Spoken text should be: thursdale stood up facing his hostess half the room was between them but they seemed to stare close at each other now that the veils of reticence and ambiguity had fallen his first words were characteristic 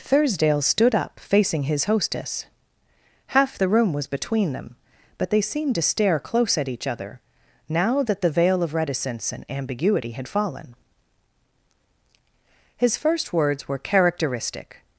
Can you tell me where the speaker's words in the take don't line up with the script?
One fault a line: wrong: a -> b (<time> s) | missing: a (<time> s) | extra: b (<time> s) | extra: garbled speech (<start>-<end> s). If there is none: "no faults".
wrong: veils -> veil (8.3 s)